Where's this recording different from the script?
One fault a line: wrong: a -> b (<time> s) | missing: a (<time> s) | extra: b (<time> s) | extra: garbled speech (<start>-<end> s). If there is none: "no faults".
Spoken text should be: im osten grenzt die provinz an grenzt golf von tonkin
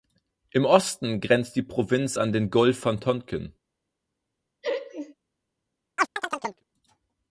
wrong: grenzt -> den (2.3 s)